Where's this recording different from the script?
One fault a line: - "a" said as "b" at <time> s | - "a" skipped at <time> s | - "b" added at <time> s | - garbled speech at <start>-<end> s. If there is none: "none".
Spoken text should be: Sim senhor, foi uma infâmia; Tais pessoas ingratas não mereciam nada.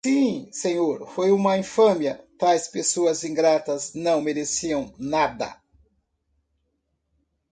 none